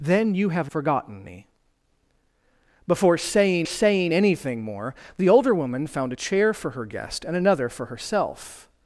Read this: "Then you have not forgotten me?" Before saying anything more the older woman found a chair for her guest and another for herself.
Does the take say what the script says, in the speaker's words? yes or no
no